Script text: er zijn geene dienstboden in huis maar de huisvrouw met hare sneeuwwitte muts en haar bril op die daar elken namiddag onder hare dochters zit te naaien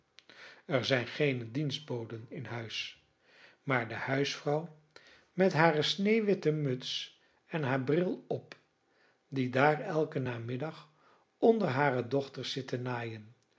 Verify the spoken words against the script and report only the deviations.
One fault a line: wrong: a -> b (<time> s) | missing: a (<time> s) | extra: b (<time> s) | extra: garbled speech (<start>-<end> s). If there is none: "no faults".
no faults